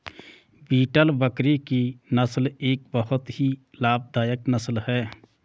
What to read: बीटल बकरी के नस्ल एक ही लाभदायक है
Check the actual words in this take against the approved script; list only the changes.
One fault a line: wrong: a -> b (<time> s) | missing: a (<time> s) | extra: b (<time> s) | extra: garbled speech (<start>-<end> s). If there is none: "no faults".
wrong: के -> की (1.7 s)
extra: बहुत (2.9 s)
extra: नस्ल (4.5 s)